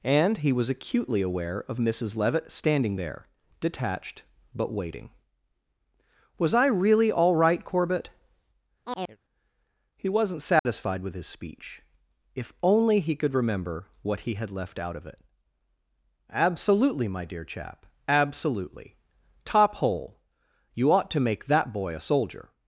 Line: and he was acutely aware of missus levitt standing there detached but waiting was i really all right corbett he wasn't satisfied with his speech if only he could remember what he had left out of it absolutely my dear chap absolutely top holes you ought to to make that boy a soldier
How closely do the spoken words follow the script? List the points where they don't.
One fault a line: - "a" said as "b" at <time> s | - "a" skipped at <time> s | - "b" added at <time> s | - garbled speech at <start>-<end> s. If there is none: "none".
- "holes" said as "hole" at 19.8 s
- "to" skipped at 21.2 s